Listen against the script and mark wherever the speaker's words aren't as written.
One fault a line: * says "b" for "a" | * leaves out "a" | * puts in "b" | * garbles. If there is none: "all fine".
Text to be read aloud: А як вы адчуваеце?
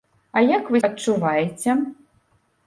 all fine